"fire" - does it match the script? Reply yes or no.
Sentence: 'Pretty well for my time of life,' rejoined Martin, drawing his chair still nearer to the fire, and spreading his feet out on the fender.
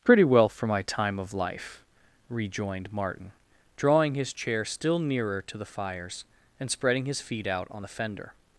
no